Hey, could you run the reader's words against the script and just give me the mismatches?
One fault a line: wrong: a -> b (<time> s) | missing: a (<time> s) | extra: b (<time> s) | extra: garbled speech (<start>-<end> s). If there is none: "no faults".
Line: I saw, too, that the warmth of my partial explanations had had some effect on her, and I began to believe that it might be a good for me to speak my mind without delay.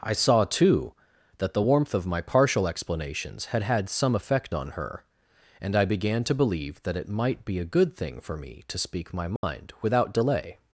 extra: thing (7.9 s)